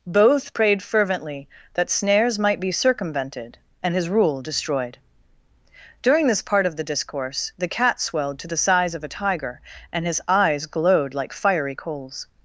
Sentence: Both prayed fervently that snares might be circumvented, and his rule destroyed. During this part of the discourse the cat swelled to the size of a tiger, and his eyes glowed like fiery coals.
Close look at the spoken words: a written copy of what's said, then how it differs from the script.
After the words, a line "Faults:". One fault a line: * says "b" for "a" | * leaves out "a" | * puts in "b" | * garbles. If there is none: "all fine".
Both prayed fervently that snares might be circumvented, and his rule destroyed. During this part of the discourse the cat swelled to the size of a tiger, and his eyes glowed like fiery coals.
Faults:
all fine